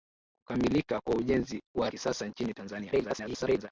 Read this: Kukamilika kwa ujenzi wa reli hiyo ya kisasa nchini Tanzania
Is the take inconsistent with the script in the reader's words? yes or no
yes